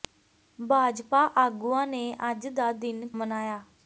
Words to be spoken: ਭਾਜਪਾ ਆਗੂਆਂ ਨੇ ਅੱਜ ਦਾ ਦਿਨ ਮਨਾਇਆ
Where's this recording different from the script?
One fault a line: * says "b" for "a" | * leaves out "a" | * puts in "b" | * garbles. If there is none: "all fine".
all fine